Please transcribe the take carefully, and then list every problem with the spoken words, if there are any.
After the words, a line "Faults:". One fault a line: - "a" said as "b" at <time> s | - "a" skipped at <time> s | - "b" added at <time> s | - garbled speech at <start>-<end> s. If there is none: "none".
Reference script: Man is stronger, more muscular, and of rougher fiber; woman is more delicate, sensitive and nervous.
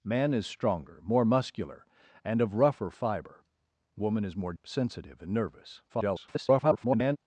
Man is stronger, more muscular, and of rougher fiber; woman is more sensitive and nervous. [garbled]
Faults:
- "delicate" skipped at 4.5 s
- garbled speech at 5.9-7.2 s